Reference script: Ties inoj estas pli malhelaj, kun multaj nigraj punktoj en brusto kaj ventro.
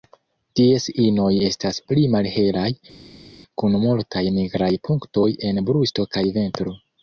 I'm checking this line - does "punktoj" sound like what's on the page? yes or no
yes